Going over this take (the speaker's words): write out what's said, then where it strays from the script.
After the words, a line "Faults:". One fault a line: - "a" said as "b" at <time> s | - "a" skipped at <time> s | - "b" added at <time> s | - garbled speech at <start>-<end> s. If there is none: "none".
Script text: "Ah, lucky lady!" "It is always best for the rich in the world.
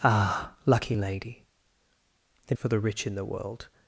"Ah, lucky lady!" "It for the rich in the world.
Faults:
- "is always best" skipped at 2.6 s